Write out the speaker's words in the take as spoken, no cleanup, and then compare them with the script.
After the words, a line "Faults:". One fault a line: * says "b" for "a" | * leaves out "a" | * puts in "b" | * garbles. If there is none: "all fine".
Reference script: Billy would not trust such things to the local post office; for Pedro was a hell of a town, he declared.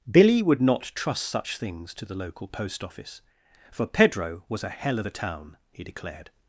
Billy would not trust such things to the local post office; for Pedro was a hell of a town, he declared.
Faults:
all fine